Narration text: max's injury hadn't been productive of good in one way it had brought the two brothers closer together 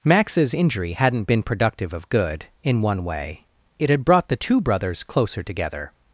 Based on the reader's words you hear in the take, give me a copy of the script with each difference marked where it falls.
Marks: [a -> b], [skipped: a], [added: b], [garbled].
max's injury hadn't been productive of good in one way it had brought the two brothers closer together